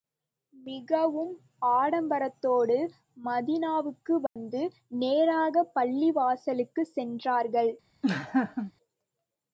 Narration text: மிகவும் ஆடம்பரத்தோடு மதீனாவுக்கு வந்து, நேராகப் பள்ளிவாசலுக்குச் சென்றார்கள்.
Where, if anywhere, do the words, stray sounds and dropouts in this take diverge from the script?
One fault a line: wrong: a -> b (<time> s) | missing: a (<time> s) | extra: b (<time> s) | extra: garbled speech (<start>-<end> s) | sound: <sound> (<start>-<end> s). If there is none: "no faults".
sound: dropout (4.3-4.4 s)
sound: laugh (8.0-8.7 s)